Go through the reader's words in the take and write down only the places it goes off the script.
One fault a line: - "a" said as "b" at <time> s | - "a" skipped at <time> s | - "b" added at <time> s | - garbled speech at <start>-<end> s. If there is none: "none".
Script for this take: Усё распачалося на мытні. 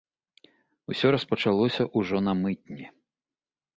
- "ўжо" added at 2.0 s